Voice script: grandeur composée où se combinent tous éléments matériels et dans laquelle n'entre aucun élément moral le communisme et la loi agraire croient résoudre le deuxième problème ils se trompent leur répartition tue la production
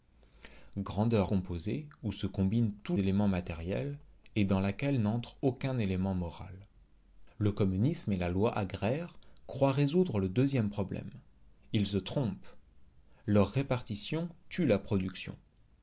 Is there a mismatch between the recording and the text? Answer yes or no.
no